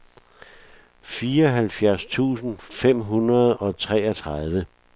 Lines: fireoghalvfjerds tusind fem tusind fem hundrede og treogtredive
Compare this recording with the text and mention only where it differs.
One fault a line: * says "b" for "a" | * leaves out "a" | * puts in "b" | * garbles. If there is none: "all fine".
* leaves out "tusind fem"